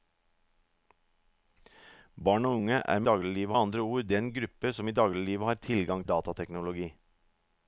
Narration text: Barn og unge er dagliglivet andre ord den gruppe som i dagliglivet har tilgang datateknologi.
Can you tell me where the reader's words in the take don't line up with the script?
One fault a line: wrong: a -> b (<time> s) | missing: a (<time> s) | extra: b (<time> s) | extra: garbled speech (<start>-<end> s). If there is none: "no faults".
no faults